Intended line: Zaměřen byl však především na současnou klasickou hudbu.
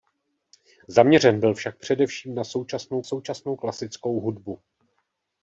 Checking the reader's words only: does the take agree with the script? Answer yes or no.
no